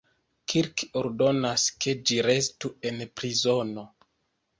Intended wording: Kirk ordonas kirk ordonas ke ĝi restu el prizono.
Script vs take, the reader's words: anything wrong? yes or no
yes